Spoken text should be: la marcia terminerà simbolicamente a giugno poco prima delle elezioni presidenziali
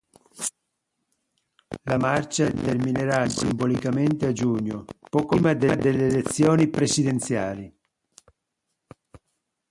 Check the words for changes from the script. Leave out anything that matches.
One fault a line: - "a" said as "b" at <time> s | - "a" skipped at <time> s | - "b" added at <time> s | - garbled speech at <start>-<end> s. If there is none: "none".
none